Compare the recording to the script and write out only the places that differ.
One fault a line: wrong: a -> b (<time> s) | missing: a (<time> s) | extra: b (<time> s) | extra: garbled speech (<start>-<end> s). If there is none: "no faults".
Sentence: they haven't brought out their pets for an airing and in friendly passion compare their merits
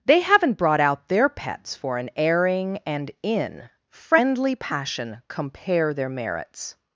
no faults